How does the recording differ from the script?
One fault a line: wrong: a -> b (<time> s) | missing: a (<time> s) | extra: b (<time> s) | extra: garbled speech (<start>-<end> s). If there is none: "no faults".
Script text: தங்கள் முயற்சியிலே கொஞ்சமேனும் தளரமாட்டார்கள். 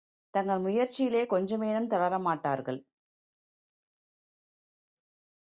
no faults